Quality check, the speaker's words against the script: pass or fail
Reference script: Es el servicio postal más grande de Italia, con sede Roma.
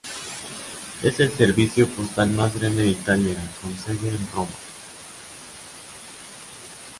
fail